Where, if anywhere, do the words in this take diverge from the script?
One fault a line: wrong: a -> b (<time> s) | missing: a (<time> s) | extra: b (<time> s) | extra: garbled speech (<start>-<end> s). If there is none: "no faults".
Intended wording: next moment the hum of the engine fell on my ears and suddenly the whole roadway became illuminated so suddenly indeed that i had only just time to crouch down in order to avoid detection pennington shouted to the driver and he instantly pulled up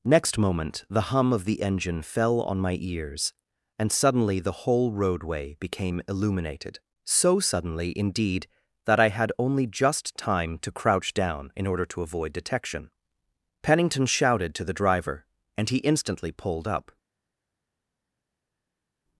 no faults